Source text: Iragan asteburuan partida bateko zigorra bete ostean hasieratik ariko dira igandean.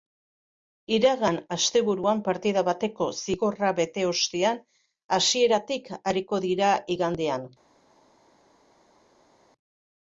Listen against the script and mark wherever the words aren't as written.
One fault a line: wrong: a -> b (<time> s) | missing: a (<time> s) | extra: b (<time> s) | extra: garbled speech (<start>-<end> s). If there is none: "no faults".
no faults